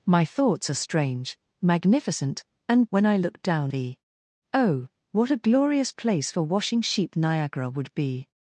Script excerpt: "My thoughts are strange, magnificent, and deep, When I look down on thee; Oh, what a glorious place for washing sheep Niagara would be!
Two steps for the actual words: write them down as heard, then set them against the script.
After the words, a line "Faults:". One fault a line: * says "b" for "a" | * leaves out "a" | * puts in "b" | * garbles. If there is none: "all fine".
"My thoughts are strange, magnificent, and When I look down thee; Oh, what a glorious place for washing sheep Niagara would be!
Faults:
* leaves out "deep"
* leaves out "on"